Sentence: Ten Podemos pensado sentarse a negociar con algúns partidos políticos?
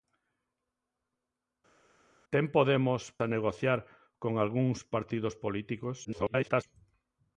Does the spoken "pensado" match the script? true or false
false